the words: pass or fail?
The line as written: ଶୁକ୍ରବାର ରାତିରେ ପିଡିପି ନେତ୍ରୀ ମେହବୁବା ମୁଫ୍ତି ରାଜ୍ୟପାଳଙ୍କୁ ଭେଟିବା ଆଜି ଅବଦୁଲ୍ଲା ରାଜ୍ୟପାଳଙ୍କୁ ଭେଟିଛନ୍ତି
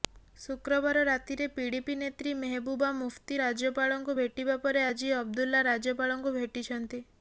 fail